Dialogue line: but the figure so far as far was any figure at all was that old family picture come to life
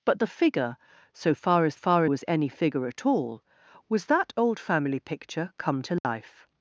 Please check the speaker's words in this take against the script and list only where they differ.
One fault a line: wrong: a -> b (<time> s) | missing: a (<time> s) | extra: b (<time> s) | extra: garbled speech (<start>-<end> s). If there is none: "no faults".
no faults